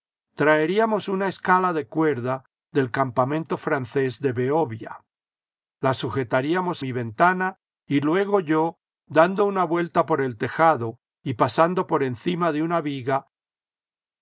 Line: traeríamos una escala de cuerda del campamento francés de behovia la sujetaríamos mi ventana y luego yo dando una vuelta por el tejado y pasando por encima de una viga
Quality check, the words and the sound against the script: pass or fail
pass